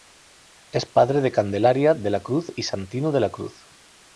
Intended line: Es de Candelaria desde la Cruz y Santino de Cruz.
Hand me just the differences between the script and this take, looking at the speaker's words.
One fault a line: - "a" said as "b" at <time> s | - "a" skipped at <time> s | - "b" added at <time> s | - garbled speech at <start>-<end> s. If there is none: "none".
- "padre" added at 0.9 s
- "desde" said as "de" at 1.9 s
- "la" added at 3.2 s